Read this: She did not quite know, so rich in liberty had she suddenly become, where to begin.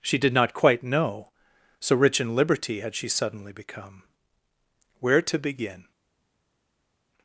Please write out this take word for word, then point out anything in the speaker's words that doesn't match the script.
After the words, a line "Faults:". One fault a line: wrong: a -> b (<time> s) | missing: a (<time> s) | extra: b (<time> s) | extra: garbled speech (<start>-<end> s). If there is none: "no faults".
She did not quite know, so rich in liberty had she suddenly become, where to begin.
Faults:
no faults